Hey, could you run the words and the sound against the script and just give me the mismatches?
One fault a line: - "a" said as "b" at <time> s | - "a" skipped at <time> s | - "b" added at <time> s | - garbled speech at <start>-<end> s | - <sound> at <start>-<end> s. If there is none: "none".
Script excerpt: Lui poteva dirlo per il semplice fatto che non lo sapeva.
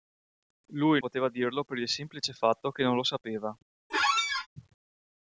- squeak at 3.9-4.5 s